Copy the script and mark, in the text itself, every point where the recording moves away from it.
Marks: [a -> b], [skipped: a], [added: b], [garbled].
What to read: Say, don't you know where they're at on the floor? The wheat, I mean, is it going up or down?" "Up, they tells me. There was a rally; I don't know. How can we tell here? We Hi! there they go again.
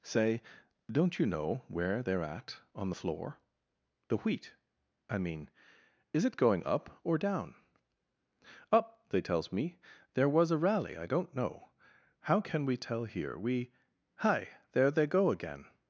Say, don't you know where they're at on the floor? The wheat, I mean, is it going up or down?" "Up, they tells me. There was a rally; I don't know. How can we tell here? We Hi! there they go again.